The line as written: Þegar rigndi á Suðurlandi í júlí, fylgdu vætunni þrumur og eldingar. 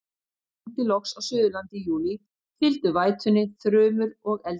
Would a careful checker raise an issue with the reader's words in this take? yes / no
yes